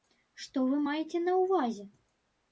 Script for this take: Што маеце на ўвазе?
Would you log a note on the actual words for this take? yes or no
yes